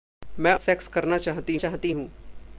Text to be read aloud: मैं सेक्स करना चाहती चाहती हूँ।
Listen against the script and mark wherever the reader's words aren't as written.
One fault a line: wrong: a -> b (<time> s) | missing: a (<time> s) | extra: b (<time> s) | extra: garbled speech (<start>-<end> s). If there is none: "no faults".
no faults